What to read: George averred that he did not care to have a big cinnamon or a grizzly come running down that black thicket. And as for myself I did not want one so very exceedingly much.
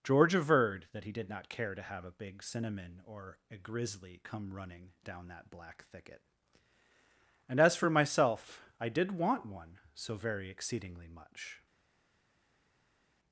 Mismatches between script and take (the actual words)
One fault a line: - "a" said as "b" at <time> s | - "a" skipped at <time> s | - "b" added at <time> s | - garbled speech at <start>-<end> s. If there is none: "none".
- "not" skipped at 9.1 s